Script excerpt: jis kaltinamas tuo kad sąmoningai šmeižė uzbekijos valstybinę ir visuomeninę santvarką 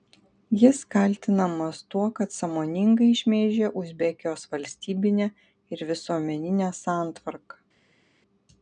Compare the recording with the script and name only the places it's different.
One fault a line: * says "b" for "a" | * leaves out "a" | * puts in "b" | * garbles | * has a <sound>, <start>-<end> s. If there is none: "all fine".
all fine